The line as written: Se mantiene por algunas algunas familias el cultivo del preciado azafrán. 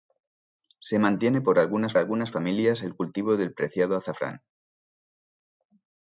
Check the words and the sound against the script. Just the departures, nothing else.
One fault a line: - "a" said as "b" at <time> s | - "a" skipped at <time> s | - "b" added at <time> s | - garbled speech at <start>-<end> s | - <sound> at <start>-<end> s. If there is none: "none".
none